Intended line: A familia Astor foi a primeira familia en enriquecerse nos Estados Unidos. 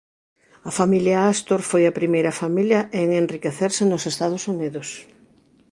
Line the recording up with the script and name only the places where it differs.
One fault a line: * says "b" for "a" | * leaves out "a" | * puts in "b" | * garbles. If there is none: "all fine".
all fine